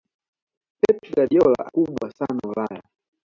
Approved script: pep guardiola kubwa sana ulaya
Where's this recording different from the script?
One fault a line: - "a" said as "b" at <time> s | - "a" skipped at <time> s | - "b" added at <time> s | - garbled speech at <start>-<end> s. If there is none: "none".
none